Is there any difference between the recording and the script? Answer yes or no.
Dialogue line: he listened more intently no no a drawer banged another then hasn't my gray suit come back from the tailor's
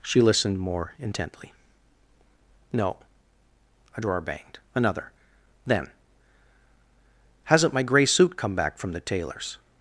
yes